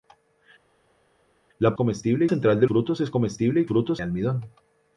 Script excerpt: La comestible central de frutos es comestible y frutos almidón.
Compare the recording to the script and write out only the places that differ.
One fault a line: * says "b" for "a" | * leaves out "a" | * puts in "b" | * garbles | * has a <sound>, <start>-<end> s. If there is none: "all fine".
all fine